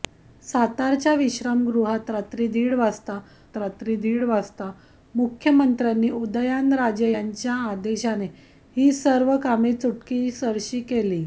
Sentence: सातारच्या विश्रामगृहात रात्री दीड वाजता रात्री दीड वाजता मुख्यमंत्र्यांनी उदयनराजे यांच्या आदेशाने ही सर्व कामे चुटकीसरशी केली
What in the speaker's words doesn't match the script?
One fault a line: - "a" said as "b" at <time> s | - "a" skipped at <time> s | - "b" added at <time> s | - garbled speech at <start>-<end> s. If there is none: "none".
none